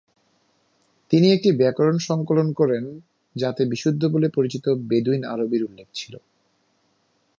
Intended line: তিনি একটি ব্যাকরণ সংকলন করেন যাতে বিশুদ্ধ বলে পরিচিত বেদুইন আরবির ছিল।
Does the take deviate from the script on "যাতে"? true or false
false